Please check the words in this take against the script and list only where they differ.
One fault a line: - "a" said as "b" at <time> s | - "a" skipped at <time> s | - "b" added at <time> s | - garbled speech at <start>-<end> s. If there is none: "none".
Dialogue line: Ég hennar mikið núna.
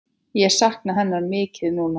- "sakna" added at 0.6 s